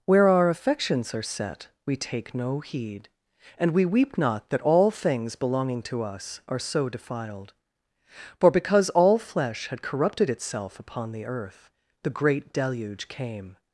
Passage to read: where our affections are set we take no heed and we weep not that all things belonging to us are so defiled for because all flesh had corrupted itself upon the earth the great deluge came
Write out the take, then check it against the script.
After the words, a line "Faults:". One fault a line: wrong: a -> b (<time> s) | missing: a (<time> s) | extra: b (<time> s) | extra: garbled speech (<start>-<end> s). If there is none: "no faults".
where our affections are set we take no heed and we weep not that all things belonging to us are so defiled for because all flesh had corrupted itself upon the earth the great deluge came
Faults:
no faults